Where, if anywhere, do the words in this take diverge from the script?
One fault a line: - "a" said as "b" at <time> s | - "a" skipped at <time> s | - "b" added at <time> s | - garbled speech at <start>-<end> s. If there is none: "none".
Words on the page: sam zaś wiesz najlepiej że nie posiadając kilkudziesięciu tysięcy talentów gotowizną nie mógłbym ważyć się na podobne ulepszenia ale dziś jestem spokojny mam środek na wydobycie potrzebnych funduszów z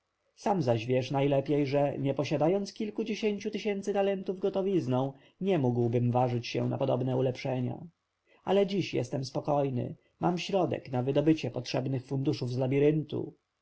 none